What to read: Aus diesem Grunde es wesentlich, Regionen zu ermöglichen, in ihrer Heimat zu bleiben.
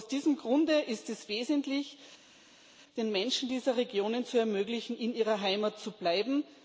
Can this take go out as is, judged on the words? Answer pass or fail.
fail